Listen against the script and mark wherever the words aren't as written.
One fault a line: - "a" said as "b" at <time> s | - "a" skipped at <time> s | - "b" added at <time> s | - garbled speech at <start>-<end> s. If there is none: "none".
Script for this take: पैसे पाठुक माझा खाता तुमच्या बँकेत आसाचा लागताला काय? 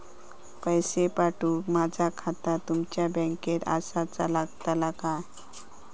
none